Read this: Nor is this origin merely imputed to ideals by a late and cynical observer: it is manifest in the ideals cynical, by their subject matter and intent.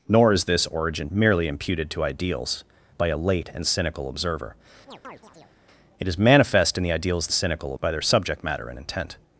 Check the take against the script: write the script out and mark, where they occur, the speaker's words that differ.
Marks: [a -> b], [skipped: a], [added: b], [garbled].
Nor is this origin merely imputed to ideals by a late and cynical observer: it is manifest in the ideals cynical, by their subject matter and intent.